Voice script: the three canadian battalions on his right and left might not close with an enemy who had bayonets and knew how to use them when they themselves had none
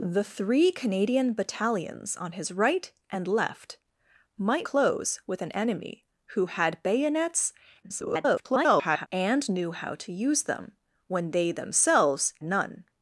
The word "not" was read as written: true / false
false